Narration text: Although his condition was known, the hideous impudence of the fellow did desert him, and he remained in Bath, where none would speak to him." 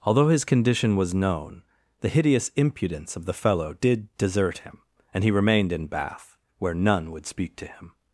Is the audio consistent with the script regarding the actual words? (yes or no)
yes